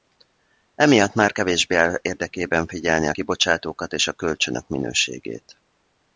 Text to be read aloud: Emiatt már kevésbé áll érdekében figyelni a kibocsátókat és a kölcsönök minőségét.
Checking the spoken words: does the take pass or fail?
pass